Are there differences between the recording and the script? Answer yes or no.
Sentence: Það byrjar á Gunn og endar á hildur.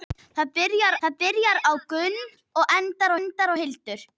yes